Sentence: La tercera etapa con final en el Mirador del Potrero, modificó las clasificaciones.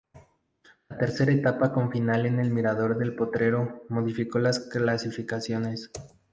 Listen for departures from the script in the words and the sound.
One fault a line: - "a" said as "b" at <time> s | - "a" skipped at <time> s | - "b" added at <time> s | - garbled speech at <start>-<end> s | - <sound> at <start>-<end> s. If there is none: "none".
none